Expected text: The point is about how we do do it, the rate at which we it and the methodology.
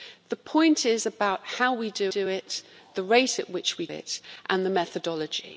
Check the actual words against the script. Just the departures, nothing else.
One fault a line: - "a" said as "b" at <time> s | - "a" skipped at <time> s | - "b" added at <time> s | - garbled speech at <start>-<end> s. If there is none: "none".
none